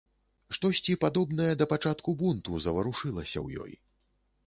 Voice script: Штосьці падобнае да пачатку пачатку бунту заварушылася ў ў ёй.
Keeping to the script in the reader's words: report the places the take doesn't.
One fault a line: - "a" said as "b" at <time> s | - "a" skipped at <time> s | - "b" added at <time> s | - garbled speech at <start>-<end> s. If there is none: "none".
- "пачатку" skipped at 2.2 s
- "ў" skipped at 3.7 s